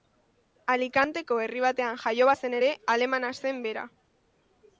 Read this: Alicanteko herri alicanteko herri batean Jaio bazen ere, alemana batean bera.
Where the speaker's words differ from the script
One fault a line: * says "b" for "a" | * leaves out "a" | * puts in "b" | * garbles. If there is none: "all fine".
* leaves out "alicanteko herri"
* says "zen" for "batean"